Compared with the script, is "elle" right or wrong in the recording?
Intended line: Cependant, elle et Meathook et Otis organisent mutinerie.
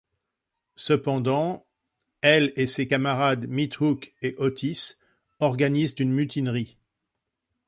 right